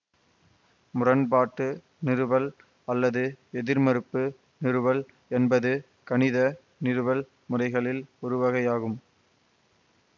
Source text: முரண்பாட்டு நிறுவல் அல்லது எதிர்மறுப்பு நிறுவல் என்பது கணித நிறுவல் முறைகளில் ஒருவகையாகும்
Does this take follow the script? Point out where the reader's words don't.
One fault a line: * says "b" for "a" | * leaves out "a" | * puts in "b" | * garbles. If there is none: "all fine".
all fine